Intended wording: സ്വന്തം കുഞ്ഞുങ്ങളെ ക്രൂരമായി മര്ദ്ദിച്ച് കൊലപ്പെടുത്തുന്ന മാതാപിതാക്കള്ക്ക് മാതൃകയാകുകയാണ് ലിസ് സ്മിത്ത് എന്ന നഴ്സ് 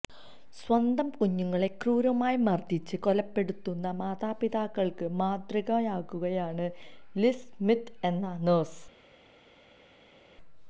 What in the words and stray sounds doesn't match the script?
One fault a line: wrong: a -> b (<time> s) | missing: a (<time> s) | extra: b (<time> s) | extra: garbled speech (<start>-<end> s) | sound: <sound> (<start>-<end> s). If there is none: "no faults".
no faults